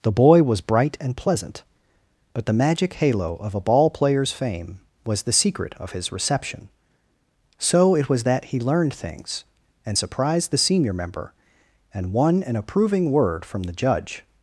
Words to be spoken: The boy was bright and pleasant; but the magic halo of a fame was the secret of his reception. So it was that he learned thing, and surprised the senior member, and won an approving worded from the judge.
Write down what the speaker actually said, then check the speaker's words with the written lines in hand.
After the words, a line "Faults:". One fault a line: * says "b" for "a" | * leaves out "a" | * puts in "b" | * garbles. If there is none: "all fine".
The boy was bright and pleasant; but the magic halo of a ball player's fame was the secret of his reception. So it was that he learned things, and surprised the senior member, and won an approving word from the judge.
Faults:
* puts in "ball player's"
* says "things" for "thing"
* says "word" for "worded"